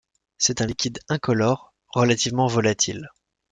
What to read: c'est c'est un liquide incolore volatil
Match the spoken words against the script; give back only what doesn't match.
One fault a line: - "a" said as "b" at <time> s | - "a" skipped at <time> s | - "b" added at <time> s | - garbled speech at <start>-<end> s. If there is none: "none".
- "c'est" skipped at 0.6 s
- "relativement" added at 1.9 s